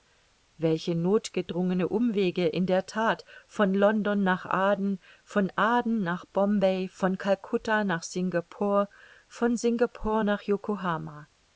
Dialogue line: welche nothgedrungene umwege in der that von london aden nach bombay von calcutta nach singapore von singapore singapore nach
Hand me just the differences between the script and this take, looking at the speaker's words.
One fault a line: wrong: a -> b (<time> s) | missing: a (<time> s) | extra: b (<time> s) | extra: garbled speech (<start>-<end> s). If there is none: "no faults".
extra: nach (4.2 s)
extra: von aden (5.2 s)
missing: singapore (10.2 s)